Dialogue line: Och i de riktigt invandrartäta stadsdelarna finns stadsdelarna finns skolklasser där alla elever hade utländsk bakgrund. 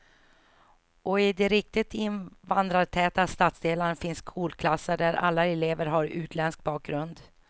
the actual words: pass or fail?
fail